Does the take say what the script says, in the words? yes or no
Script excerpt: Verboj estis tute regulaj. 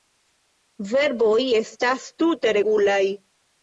no